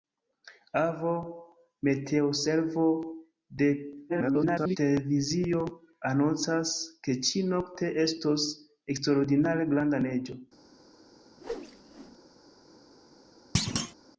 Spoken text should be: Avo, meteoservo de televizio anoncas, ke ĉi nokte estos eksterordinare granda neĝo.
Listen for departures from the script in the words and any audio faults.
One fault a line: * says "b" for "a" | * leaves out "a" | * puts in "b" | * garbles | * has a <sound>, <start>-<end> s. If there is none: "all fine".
* garbles
* has a whoosh, 11.4-12.2 s
* has a thud, 13.5-13.9 s